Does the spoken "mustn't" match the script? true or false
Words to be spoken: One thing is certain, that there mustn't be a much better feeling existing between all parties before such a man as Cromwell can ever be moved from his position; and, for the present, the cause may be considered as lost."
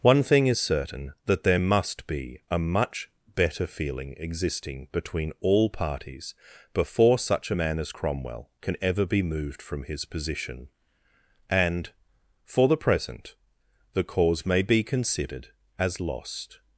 false